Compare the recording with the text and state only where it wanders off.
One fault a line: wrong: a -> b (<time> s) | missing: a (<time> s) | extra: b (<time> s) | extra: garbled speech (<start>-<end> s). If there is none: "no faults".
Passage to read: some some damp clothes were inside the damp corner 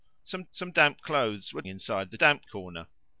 no faults